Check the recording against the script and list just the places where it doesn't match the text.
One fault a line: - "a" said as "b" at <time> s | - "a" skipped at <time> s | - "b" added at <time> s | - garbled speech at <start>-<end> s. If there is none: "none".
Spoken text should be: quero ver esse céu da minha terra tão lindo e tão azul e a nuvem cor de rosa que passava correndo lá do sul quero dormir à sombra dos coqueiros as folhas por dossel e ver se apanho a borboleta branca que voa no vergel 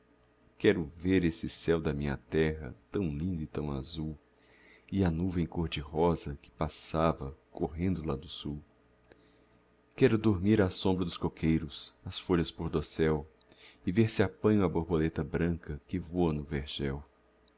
none